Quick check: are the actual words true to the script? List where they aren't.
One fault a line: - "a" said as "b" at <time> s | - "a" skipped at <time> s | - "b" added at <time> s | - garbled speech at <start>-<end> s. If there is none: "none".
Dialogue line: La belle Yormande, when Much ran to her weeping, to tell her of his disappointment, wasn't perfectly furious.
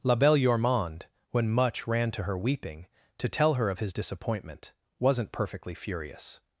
none